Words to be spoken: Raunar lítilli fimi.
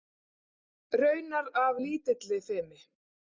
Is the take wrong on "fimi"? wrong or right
right